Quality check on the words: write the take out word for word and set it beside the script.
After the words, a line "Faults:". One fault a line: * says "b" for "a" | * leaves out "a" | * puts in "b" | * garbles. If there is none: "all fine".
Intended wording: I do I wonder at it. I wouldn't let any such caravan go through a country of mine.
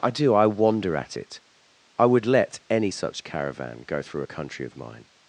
I do I wonder at it. I would let any such caravan go through a country of mine.
Faults:
* says "would" for "wouldn't"